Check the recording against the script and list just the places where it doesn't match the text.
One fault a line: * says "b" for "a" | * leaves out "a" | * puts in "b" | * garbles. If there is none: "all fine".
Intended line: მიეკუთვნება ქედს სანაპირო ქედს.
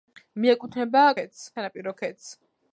all fine